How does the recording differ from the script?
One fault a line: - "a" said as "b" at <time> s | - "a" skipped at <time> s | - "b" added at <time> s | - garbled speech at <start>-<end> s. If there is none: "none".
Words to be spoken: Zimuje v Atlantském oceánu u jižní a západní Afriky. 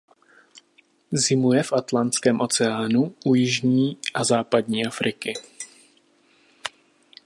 none